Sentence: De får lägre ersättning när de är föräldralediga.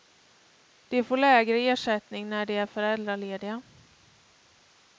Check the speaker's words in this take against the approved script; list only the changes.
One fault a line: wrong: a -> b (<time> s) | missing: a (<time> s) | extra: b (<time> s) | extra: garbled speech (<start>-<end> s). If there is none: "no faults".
no faults